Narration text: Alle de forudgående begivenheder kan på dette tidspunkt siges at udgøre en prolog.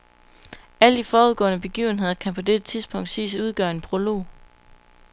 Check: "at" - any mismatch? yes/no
yes